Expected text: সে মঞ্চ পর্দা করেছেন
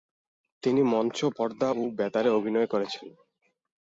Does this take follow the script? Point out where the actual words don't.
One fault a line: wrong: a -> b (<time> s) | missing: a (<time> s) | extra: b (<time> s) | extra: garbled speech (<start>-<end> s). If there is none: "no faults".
wrong: সে -> তিনি (0.6 s)
extra: ও বেতারে অভিনয় (1.7 s)